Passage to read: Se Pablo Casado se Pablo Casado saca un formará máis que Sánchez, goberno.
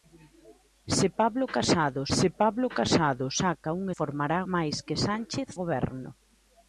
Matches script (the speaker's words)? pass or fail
pass